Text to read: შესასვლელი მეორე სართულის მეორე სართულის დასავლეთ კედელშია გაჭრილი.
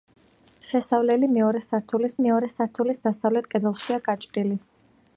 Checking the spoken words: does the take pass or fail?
pass